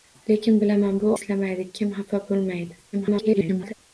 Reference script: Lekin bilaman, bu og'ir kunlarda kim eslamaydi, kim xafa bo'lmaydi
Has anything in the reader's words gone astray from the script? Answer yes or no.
yes